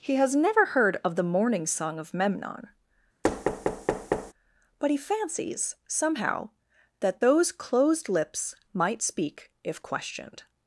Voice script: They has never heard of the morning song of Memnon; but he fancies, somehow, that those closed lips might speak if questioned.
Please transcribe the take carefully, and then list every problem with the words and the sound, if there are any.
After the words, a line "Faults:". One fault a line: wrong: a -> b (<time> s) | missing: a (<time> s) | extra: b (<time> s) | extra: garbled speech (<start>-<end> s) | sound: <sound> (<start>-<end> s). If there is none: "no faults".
He has never heard of the morning song of Memnon; but he fancies, somehow, that those closed lips might speak if questioned.
Faults:
wrong: They -> He (0.0 s)
sound: thud (3.2-4.3 s)